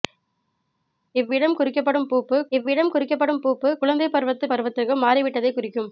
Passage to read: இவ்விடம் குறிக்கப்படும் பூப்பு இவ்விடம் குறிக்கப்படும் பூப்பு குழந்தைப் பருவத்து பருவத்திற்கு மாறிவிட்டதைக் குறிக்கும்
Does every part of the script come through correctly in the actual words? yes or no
yes